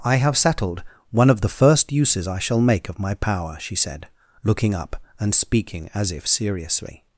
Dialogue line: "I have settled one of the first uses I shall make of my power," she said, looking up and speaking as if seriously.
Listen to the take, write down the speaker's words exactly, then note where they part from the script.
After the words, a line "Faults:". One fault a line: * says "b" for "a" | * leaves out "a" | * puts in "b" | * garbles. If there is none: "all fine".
"I have settled one of the first uses I shall make of my power," she said, looking up and speaking as if seriously.
Faults:
all fine